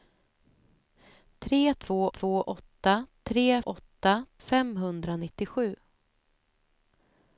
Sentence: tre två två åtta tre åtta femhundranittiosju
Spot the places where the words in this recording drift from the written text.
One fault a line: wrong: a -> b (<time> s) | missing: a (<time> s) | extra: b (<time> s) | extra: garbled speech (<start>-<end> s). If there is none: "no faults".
no faults